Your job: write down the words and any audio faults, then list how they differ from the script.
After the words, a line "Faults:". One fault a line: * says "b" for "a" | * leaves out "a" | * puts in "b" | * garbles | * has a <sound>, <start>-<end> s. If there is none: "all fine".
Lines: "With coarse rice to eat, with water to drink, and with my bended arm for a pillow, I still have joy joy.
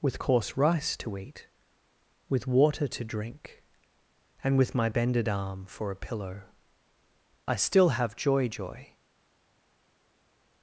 "With coarse rice to eat, with water to drink, and with my bended arm for a pillow, I still have joy joy.
Faults:
all fine